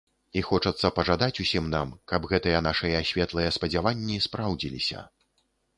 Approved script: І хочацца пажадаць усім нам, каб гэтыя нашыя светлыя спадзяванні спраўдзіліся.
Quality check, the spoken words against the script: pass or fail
pass